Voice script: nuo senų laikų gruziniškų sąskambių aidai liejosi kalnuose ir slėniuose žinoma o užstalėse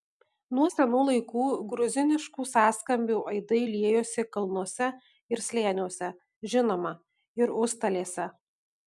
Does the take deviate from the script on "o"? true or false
true